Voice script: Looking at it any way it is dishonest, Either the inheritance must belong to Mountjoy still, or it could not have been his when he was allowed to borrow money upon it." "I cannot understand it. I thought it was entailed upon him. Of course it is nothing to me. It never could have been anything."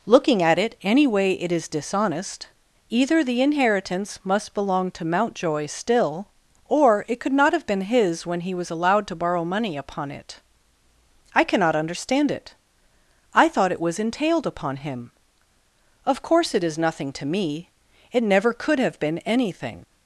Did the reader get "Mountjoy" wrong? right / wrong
right